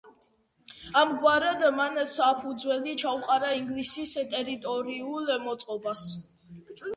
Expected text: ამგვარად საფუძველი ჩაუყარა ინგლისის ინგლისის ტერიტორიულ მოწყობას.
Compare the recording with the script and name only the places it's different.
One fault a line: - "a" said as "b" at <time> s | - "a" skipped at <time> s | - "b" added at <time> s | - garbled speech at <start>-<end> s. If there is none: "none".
- "მან" added at 1.8 s
- "ინგლისის" skipped at 4.2 s